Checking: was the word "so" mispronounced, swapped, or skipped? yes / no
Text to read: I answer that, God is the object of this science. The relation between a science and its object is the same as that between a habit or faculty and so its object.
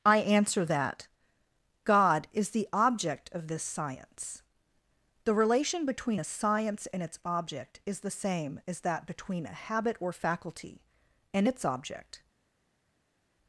yes